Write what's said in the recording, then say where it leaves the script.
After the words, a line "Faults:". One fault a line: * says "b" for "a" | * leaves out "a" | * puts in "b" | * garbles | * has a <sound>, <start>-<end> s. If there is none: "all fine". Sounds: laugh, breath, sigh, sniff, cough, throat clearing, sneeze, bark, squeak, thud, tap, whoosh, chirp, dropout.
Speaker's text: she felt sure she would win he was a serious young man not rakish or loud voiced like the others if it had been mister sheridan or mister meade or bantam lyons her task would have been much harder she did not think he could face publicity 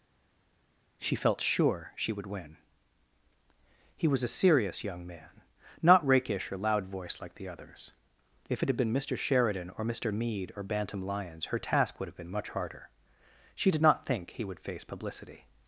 she felt sure she would win he was a serious young man not rakish or loud voiced like the others if it had been mister sheridan or mister meade or bantam lyons her task would have been much harder she did not think he would face publicity
Faults:
* says "would" for "could"